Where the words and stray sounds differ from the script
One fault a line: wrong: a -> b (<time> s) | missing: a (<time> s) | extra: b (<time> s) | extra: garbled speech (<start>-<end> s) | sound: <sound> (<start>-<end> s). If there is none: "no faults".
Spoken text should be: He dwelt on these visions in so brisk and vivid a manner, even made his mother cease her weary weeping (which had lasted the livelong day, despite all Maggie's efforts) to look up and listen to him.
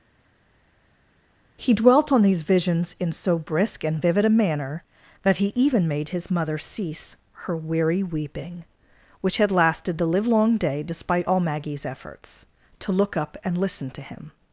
extra: that he (5.2 s)